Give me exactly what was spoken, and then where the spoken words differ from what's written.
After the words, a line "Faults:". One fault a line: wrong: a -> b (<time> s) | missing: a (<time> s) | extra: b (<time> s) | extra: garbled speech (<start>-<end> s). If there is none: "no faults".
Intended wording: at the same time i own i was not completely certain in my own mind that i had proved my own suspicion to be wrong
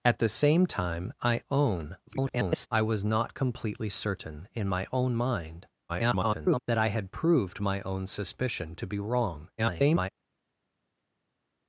at the same time i own [garbled] i was not completely certain in my own mind [garbled] that i had proved my own suspicion to be wrong [garbled]
Faults:
extra: garbled speech (2.1-2.7 s)
extra: garbled speech (5.9-6.6 s)
extra: garbled speech (9.6-10.1 s)